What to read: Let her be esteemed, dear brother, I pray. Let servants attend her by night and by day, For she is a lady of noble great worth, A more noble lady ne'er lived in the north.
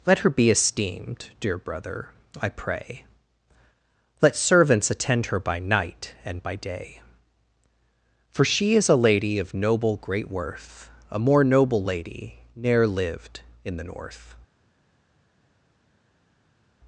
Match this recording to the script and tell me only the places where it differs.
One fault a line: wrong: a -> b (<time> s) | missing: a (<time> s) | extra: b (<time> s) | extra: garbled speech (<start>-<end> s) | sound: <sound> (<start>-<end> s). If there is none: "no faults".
no faults